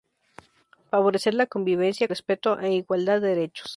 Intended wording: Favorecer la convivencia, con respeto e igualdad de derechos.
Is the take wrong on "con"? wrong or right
wrong